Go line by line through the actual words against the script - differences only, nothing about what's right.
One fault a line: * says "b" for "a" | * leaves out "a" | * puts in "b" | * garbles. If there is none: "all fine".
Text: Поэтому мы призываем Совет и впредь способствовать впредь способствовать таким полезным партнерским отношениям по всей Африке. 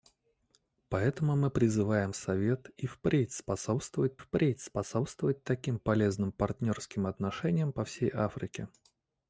all fine